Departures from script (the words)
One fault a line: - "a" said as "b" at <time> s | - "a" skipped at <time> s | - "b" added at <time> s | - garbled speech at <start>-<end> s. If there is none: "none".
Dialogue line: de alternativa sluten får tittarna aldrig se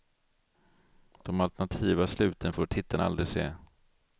none